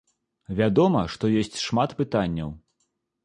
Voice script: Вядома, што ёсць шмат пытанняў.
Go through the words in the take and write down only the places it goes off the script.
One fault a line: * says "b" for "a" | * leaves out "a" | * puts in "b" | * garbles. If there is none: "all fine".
all fine